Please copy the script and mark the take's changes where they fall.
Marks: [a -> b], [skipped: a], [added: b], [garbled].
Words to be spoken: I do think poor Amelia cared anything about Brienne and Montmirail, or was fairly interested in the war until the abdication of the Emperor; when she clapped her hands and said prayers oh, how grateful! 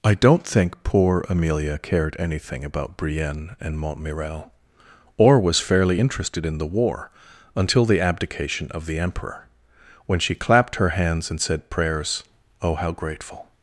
I [do -> don't] think poor Amelia cared anything about Brienne and Montmirail, or was fairly interested in the war until the abdication of the Emperor; when she clapped her hands and said prayers oh, how grateful!